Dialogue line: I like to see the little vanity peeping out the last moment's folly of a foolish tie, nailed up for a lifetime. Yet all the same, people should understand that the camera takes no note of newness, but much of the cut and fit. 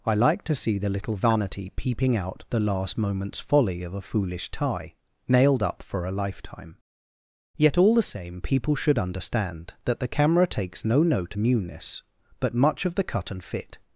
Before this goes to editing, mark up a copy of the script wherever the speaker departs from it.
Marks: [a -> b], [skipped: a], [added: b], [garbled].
I like to see the little vanity peeping out the last moment's folly of a foolish tie, nailed up for a lifetime. Yet all the same, people should understand that the camera takes no note [skipped: of] newness, but much of the cut and fit.